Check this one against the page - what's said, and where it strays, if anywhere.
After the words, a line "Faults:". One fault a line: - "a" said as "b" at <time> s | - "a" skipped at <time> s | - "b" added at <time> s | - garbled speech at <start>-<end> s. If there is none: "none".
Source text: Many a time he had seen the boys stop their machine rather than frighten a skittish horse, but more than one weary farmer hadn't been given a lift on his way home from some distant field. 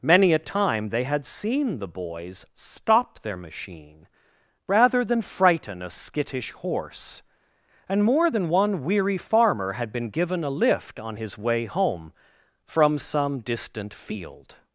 Many a time they had seen the boys stop their machine rather than frighten a skittish horse, and more than one weary farmer had been given a lift on his way home from some distant field.
Faults:
- "he" said as "they" at 0.9 s
- "but" said as "and" at 7.9 s
- "hadn't" said as "had" at 9.7 s